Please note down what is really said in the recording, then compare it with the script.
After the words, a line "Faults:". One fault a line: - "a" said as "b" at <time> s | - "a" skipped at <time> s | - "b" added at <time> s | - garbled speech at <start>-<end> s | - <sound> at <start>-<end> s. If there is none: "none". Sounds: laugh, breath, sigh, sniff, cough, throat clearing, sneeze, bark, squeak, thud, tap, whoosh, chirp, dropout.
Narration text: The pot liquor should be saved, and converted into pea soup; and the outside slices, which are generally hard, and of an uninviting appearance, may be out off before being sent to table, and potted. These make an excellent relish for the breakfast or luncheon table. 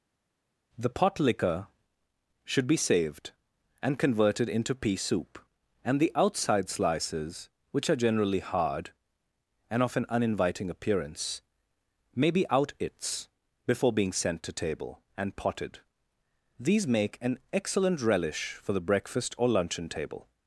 The pot liquor should be saved, and converted into pea soup; and the outside slices, which are generally hard, and of an uninviting appearance, may be out its before being sent to table, and potted. These make an excellent relish for the breakfast or luncheon table.
Faults:
- "off" said as "its" at 12.8 s